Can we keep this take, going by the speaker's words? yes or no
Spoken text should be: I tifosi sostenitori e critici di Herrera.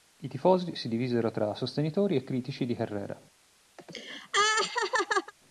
no